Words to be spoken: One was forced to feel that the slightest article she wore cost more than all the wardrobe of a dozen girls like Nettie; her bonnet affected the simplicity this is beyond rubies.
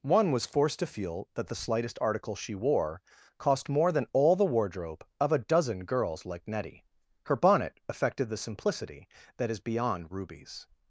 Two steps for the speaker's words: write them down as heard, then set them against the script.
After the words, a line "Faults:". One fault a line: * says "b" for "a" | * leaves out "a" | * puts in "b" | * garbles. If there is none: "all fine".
One was forced to feel that the slightest article she wore cost more than all the wardrobe of a dozen girls like Nettie; her bonnet affected the simplicity that is beyond rubies.
Faults:
* says "that" for "this"